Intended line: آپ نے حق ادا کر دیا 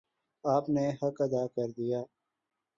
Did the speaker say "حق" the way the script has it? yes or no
yes